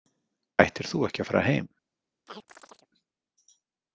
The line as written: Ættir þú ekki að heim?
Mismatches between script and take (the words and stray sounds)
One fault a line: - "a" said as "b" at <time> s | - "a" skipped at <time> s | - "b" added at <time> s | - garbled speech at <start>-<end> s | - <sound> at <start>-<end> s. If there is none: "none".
- "fara" added at 1.3 s
- chirp at 2.3-2.9 s